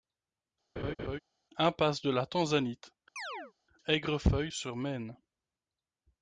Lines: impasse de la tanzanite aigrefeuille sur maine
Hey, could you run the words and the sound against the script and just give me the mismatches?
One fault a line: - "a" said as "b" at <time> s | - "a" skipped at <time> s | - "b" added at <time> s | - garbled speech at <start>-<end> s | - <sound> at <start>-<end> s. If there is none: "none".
- laugh at 0.8-1.2 s
- chirp at 3.2-3.5 s